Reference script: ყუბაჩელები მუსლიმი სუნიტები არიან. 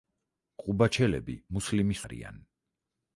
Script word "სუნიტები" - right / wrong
wrong